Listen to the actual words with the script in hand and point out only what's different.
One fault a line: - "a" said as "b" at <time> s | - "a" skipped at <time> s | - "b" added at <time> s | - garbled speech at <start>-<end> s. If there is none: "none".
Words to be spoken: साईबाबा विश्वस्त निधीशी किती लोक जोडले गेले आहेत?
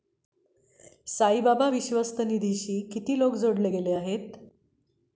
none